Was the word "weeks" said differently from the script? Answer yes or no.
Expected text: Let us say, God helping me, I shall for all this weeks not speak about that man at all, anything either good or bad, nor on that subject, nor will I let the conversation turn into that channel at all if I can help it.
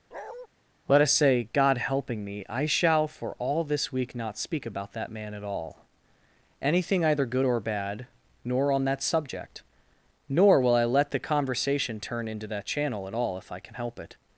yes